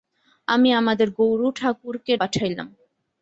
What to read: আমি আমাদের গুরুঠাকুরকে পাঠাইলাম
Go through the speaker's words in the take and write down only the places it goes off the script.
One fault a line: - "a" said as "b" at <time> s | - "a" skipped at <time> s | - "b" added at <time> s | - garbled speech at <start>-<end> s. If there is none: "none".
none